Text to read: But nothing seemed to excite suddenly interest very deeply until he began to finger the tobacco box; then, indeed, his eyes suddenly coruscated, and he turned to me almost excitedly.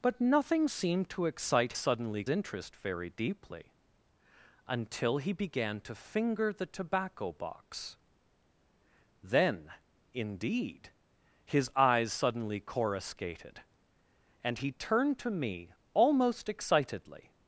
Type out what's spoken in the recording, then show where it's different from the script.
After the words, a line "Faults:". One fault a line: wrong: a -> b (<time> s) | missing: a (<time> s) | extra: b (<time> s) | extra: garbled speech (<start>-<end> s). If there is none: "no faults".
But nothing seemed to excite suddenly interest very deeply until he began to finger the tobacco box; then, indeed, his eyes suddenly coruscated, and he turned to me almost excitedly.
Faults:
no faults